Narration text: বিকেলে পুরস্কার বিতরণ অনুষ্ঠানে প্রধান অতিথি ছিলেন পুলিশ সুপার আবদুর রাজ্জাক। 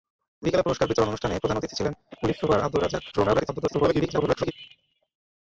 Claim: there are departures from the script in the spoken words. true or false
true